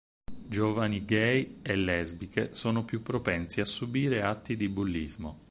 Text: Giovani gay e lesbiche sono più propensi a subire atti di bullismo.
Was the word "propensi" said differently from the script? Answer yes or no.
no